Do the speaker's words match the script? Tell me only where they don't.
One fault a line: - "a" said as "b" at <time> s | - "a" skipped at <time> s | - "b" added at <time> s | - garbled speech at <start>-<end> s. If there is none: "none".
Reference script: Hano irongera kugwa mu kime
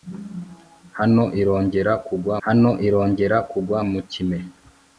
- "hano irongera kugwa" added at 2.4 s